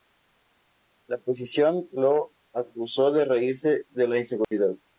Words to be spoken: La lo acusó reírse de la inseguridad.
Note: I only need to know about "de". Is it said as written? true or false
true